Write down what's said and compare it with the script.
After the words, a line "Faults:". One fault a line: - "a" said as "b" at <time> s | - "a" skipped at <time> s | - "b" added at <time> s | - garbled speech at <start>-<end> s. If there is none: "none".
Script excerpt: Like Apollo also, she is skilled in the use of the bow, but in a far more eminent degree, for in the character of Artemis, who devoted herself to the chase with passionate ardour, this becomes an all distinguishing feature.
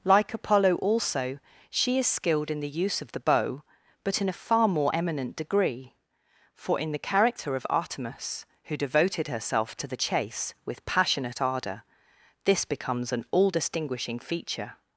Like Apollo also, she is skilled in the use of the bow, but in a far more eminent degree, for in the character of Artemis, who devoted herself to the chase with passionate ardour, this becomes an all distinguishing feature.
Faults:
none